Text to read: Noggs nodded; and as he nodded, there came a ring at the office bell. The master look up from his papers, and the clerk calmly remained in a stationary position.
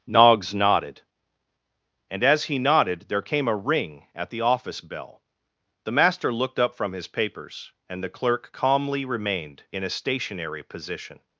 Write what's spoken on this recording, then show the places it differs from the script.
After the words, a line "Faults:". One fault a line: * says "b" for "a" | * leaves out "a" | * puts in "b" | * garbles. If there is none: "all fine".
Noggs nodded; and as he nodded, there came a ring at the office bell. The master looked up from his papers, and the clerk calmly remained in a stationary position.
Faults:
* says "looked" for "look"